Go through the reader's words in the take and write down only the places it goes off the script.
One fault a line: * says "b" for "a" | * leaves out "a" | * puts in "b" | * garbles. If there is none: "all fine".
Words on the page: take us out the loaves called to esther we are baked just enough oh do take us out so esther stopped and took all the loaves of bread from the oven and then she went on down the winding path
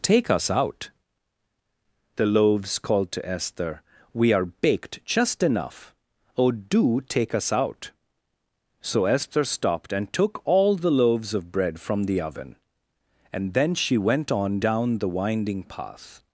all fine